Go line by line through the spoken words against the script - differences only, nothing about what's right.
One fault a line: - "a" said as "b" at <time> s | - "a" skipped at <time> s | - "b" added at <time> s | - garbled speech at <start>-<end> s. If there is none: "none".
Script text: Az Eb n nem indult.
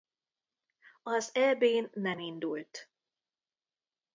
none